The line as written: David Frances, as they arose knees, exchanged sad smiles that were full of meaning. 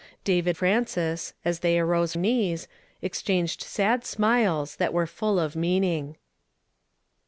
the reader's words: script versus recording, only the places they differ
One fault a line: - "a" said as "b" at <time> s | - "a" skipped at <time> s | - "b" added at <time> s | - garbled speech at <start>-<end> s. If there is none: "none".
none